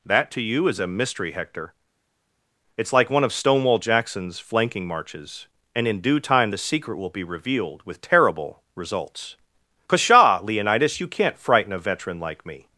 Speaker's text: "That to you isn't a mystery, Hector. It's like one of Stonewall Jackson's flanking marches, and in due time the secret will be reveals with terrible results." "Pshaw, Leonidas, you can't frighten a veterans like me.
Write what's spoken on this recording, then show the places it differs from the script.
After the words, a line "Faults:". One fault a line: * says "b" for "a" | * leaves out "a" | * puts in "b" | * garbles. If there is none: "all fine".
"That to you is a mystery, Hector. It's like one of Stonewall Jackson's flanking marches, and in due time the secret will be revealed with terrible results." "Pshaw, Leonidas, you can't frighten a veteran like me.
Faults:
* says "is" for "isn't"
* says "revealed" for "reveals"
* says "veteran" for "veterans"